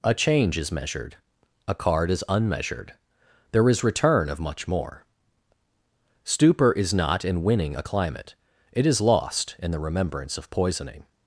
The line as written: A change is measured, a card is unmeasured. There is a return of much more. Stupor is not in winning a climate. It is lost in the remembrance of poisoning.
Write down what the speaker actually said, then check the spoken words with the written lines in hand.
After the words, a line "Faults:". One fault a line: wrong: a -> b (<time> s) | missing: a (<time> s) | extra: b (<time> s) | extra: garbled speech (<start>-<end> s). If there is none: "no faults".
A change is measured, a card is unmeasured. There is return of much more. Stupor is not in winning a climate. It is lost in the remembrance of poisoning.
Faults:
missing: a (3.8 s)